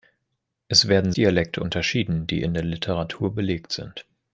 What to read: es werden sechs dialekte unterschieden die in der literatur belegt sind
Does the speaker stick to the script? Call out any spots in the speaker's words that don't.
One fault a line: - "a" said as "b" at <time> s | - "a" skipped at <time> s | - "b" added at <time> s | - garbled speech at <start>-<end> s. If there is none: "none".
- "sechs" skipped at 1.1 s